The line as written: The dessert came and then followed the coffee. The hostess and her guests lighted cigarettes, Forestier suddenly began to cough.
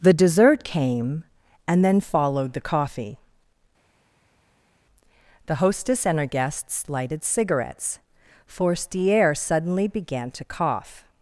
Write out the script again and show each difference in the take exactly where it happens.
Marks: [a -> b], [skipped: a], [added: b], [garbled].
The dessert came and then followed the coffee. The hostess and her guests lighted cigarettes, Forestier suddenly began to cough.